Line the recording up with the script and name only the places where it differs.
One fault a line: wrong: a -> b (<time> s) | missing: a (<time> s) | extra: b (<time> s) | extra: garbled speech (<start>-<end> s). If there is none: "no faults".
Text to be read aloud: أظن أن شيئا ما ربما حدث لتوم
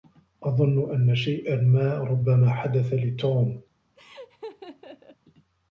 no faults